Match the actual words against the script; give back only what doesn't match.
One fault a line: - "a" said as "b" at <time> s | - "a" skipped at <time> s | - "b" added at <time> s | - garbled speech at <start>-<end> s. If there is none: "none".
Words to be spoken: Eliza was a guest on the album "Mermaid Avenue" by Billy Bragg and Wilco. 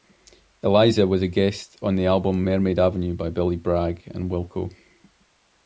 none